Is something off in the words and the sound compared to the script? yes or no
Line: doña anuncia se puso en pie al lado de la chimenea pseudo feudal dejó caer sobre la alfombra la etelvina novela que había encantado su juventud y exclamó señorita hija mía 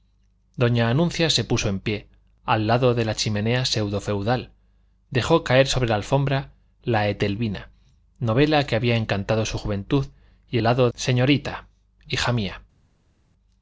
yes